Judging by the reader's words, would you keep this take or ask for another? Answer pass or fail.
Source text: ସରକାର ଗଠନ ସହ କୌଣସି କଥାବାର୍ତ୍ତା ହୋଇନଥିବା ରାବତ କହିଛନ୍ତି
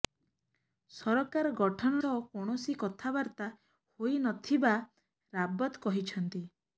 pass